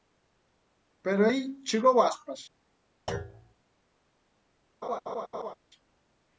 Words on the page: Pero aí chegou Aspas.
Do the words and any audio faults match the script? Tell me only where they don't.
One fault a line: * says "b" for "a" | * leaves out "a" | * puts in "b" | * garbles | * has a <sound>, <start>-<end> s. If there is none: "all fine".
* has a thud, 3.1-3.5 s
* has a laugh, 4.8-5.5 s